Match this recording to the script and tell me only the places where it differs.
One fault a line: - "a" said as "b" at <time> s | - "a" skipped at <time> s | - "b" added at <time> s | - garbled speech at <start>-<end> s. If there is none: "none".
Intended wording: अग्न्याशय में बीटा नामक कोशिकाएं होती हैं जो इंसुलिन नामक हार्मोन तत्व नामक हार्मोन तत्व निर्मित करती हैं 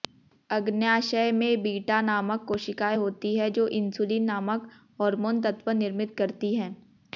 - "नामक हार्मोन तत्व" skipped at 5.7 s